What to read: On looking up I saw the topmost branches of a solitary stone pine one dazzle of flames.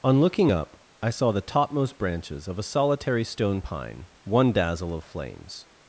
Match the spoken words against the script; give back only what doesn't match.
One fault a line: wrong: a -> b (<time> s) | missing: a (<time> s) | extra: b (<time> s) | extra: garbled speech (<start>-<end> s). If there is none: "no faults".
no faults